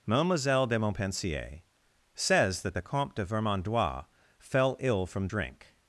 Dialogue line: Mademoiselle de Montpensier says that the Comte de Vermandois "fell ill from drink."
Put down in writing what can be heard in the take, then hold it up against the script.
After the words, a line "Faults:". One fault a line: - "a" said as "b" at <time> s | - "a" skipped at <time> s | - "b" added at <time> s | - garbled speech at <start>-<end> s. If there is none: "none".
Mademoiselle de Montpensier says that the Comte de Vermandois "fell ill from drink."
Faults:
none